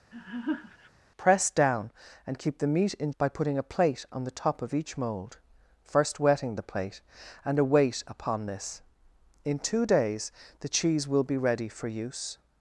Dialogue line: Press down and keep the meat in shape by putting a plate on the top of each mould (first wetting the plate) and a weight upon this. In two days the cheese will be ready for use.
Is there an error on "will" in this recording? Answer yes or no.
no